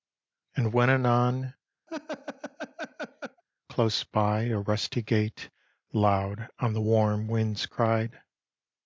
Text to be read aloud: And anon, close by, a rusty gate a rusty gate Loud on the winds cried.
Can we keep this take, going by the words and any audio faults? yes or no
no